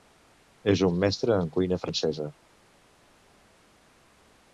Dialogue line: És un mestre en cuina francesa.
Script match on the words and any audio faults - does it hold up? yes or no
yes